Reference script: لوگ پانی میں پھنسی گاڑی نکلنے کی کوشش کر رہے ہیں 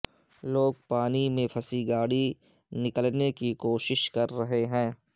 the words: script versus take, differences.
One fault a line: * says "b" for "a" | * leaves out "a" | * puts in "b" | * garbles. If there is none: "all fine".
all fine